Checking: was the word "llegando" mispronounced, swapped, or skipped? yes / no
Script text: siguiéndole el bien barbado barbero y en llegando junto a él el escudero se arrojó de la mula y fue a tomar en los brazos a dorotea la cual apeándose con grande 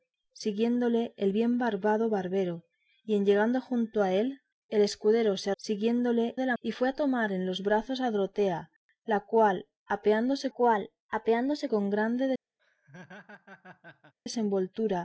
no